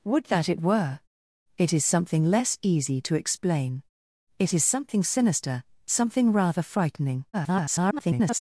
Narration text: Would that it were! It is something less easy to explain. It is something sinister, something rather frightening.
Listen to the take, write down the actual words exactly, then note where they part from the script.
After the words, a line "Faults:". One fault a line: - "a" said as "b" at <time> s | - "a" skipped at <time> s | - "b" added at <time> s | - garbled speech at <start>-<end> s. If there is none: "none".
Would that it were! It is something less easy to explain. It is something sinister, something rather frightening. [garbled]
Faults:
- garbled speech at 7.3-8.4 s